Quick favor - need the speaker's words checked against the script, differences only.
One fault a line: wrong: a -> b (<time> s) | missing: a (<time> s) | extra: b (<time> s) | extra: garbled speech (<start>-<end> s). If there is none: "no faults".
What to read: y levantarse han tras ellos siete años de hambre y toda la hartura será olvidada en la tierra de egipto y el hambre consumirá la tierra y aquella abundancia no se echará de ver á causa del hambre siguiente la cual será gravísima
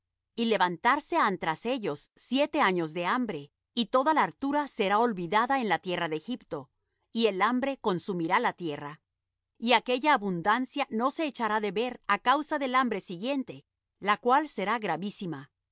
no faults